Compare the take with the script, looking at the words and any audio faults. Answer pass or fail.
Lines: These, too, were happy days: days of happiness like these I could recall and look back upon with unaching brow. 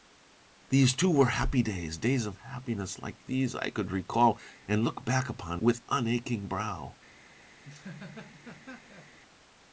fail